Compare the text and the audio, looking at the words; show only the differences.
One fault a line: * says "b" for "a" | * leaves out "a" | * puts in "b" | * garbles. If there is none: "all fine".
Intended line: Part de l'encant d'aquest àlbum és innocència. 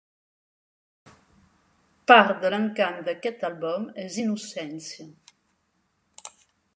all fine